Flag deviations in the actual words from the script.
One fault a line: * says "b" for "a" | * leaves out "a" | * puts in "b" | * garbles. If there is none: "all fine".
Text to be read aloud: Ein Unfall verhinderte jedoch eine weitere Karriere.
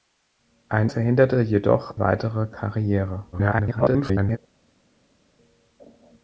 * leaves out "Unfall"
* leaves out "eine"
* garbles